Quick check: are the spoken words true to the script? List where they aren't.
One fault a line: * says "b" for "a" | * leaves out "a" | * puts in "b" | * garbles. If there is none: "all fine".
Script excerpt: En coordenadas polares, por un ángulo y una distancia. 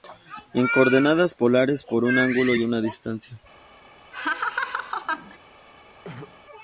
all fine